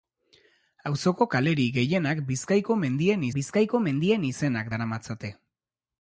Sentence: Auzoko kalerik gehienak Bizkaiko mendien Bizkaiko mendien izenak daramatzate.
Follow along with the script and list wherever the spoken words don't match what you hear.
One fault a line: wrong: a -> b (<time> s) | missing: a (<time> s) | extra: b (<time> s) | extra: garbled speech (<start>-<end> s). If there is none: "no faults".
no faults